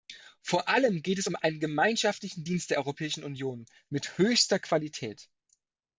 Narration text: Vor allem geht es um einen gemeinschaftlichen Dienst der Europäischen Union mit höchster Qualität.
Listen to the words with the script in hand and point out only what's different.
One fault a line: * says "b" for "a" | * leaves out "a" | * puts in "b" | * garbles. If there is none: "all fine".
all fine